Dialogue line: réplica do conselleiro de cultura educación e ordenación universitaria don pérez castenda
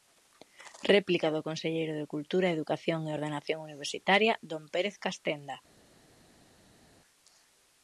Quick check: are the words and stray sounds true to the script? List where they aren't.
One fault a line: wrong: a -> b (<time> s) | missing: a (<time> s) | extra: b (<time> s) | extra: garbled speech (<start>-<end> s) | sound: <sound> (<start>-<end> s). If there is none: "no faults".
no faults